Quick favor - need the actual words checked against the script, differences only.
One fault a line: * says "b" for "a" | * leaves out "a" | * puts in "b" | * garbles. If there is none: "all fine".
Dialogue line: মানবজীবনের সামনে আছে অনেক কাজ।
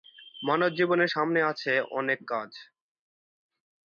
all fine